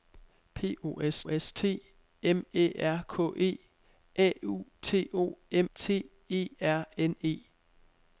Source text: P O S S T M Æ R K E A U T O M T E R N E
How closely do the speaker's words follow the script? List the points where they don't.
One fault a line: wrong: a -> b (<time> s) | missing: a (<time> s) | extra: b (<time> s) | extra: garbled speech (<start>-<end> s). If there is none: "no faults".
no faults